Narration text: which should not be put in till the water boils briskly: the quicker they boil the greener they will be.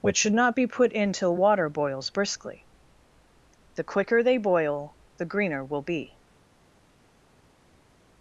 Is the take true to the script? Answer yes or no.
no